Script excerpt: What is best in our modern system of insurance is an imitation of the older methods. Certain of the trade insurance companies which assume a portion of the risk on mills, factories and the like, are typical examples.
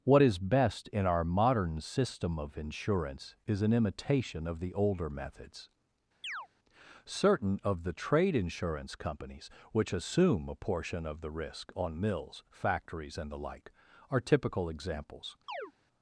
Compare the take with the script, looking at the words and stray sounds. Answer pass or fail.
fail